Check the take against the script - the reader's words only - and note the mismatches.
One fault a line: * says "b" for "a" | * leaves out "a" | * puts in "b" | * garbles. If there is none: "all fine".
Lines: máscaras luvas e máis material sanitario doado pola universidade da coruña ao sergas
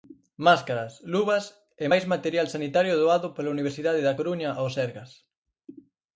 all fine